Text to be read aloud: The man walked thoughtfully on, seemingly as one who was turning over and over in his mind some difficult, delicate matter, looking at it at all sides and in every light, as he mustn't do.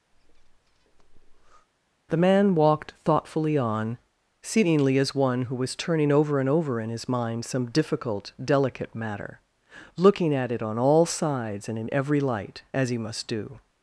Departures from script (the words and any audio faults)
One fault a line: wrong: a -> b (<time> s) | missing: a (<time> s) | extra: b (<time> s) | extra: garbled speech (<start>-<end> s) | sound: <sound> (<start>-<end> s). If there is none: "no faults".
sound: breath (0.1-1.7 s)
wrong: at -> on (10.6 s)
wrong: mustn't -> must (13.0 s)